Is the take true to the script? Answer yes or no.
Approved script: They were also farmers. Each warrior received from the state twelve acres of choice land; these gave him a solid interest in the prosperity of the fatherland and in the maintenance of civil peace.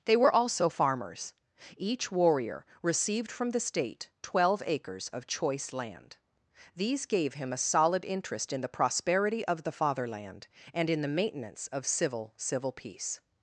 no